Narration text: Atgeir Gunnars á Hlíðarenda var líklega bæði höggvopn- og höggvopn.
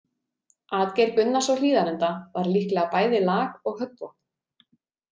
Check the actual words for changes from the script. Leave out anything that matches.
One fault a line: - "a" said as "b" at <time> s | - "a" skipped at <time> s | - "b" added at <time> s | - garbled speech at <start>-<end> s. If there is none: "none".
- "höggvopn" said as "lag" at 3.3 s